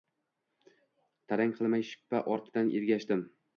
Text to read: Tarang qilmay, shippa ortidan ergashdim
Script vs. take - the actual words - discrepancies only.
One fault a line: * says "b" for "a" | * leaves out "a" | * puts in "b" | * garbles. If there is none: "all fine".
all fine